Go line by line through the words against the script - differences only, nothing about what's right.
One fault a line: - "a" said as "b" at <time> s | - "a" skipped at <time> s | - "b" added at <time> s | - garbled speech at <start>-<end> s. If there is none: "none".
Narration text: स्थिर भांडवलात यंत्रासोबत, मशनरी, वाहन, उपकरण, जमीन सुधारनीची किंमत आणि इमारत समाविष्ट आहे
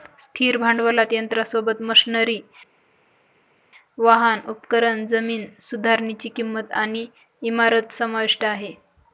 none